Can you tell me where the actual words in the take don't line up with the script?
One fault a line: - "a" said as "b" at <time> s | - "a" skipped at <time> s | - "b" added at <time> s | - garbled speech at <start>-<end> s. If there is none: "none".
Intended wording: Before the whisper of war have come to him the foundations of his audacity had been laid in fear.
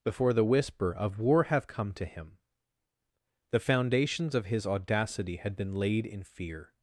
none